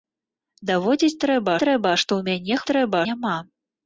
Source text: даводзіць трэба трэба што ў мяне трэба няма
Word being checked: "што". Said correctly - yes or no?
yes